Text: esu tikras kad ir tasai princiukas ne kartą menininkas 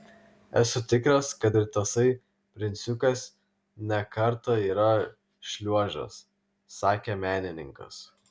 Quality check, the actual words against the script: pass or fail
fail